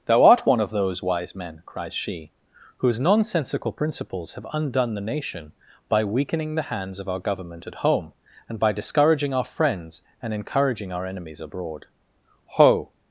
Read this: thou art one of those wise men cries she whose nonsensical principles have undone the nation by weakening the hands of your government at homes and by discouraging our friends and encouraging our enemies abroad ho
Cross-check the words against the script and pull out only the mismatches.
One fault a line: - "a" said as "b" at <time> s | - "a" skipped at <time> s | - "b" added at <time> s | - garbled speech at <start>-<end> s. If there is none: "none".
- "your" said as "our" at 7.1 s
- "homes" said as "home" at 7.8 s